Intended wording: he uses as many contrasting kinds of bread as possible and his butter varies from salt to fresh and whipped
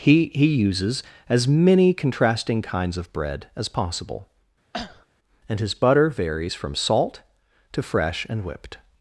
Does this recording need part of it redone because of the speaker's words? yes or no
yes